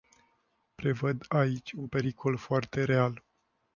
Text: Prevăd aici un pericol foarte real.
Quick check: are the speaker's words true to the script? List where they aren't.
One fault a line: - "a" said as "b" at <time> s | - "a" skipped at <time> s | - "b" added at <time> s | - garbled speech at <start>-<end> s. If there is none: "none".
none